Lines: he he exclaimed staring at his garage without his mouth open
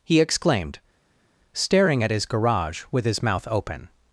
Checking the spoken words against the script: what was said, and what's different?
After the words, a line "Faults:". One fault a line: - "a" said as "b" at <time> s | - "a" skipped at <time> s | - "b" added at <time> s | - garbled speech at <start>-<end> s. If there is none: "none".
he exclaimed staring at his garage with his mouth open
Faults:
- "he" skipped at 0.2 s
- "without" said as "with" at 2.9 s